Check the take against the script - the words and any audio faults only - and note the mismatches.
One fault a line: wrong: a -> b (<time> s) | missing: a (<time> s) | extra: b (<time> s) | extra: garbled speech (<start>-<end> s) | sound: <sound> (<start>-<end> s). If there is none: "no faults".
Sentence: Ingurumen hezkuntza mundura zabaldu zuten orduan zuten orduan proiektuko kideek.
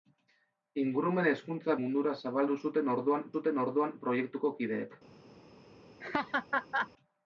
sound: laugh (6.0-6.9 s)